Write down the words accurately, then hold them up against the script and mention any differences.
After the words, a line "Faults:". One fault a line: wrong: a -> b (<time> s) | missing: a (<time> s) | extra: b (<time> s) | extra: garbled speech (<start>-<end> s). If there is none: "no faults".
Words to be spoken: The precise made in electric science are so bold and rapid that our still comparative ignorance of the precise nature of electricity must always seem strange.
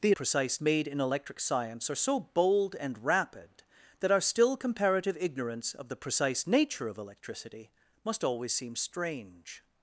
The precise made in electric science are so bold and rapid that our still comparative ignorance of the precise nature of electricity must always seem strange.
Faults:
no faults